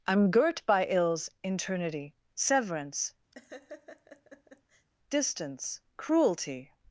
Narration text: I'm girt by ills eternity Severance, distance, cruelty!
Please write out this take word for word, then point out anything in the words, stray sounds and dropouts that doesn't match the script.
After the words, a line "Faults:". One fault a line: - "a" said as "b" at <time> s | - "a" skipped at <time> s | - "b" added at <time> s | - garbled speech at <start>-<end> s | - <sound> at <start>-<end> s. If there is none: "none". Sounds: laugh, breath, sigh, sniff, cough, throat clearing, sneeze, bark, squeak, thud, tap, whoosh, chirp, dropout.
I'm girt by ills eternity Severance, distance, cruelty!
Faults:
- laugh at 3.3-4.9 s